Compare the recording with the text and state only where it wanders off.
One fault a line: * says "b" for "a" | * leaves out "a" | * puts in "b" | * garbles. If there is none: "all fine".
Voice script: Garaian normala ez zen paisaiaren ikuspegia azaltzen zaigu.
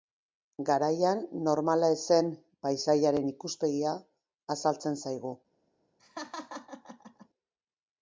all fine